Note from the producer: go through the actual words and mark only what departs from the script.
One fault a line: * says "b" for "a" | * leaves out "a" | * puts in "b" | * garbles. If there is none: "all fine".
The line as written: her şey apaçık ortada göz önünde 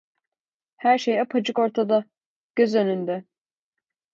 all fine